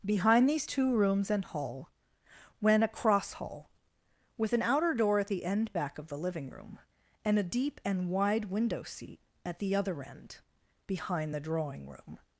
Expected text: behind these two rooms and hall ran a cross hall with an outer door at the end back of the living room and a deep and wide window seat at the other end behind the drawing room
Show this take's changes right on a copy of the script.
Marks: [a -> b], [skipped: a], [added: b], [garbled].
behind these two rooms and hall [ran -> went] a cross hall with an outer door at the end back of the living room and a deep and wide window seat at the other end behind the drawing room